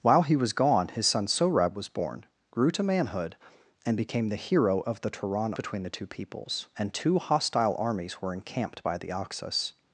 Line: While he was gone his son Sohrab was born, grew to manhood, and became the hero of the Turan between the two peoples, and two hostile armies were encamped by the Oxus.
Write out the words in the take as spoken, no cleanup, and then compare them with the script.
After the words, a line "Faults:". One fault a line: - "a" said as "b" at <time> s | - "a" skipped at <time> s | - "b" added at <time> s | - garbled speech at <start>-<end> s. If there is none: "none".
While he was gone his son Sohrab was born, grew to manhood, and became the hero of the Turan between the two peoples, and two hostile armies were encamped by the Oxus.
Faults:
none